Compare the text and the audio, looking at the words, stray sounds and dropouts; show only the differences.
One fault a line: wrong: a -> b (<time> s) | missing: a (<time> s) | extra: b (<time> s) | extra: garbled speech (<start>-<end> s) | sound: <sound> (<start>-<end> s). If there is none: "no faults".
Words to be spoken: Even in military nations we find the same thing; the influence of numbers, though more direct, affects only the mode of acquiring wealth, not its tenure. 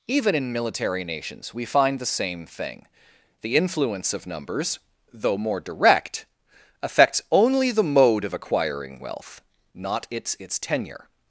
extra: its (10.4 s)